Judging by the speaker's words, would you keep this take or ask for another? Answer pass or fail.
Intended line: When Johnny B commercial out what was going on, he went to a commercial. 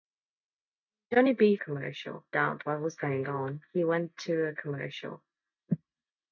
pass